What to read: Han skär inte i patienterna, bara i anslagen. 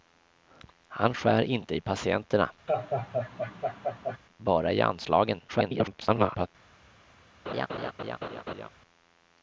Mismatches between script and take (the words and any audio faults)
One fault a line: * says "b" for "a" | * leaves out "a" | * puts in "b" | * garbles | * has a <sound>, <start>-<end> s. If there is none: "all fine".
* has a laugh, 2.7-4.2 s
* garbles
* has a laugh, 7.5-8.7 s